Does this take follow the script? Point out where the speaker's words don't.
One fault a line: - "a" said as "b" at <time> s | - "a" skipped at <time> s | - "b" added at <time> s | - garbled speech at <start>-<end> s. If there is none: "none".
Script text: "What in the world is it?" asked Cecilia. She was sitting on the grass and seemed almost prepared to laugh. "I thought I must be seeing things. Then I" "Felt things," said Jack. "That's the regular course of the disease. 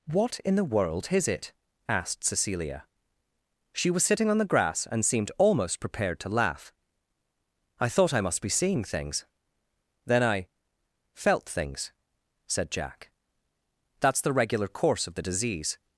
none